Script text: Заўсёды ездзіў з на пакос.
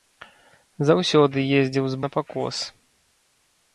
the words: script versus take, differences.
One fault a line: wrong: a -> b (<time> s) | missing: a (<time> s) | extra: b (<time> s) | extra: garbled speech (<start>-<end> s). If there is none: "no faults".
no faults